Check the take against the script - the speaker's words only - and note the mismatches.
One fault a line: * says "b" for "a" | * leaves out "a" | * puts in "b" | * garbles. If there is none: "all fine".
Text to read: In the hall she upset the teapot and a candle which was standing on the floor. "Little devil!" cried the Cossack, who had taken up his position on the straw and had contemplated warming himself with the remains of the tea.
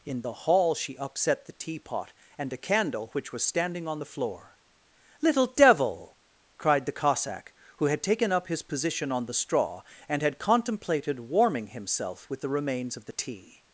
all fine